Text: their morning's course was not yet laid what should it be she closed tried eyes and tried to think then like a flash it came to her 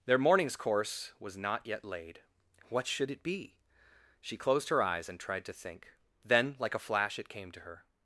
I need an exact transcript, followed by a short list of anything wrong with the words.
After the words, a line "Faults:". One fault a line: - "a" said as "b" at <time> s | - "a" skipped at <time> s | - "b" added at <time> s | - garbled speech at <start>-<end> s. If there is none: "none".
their morning's course was not yet laid what should it be she closed her eyes and tried to think then like a flash it came to her
Faults:
- "tried" said as "her" at 4.7 s